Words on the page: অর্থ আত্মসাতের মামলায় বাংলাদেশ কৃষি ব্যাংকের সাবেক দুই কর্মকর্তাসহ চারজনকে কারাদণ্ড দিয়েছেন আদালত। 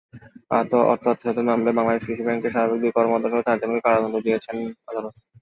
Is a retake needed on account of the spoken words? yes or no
no